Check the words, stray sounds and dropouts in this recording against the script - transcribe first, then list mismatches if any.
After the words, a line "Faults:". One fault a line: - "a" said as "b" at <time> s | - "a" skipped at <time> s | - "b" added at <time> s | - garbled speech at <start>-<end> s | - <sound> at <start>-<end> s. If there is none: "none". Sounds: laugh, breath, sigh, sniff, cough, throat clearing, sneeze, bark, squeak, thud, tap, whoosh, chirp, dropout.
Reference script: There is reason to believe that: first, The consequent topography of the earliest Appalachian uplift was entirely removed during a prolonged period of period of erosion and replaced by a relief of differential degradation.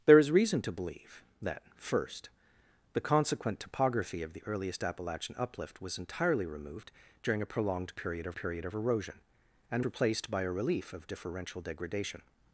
There is reason to believe that: first, The consequent topography of the earliest Appalachian uplift was entirely removed during a prolonged period of period of erosion and replaced by a relief of differential degradation.
Faults:
none